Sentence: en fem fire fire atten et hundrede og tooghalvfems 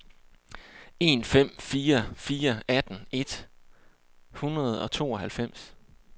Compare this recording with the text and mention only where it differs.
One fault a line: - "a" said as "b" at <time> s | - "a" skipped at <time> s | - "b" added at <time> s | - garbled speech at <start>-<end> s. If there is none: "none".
none